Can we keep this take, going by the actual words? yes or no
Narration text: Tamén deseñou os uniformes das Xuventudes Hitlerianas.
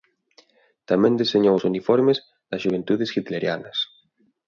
yes